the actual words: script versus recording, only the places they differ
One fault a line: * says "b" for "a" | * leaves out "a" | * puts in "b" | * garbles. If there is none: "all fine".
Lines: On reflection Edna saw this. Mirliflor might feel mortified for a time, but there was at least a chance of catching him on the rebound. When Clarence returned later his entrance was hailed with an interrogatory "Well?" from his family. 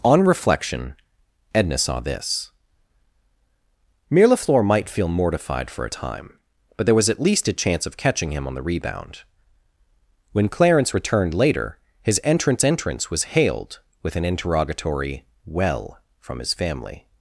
* puts in "entrance"